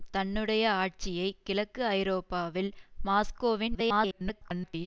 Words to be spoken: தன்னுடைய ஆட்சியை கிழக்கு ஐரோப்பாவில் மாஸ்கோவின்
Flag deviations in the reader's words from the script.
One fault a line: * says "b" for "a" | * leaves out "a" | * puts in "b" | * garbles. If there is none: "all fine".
* garbles